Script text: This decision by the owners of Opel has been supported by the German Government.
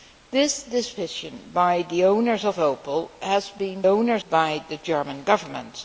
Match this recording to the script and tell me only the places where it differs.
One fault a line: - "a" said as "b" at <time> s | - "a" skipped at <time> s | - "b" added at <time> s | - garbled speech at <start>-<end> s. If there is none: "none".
- "supported" said as "owners" at 3.9 s